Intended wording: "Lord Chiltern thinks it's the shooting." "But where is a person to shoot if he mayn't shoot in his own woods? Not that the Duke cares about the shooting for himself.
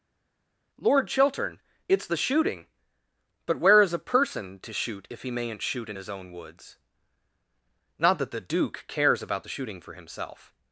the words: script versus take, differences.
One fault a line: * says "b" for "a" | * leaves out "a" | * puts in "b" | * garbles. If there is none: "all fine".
* leaves out "thinks"